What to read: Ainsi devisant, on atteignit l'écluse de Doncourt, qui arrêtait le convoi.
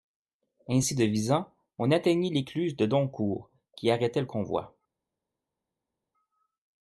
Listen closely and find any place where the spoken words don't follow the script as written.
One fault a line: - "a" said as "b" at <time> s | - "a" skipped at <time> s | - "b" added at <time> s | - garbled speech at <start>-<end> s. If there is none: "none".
none